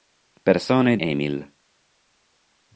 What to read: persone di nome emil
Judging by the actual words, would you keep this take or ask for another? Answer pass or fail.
fail